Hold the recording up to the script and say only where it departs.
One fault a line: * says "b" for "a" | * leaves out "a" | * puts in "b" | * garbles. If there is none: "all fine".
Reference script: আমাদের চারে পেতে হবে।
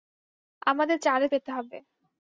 all fine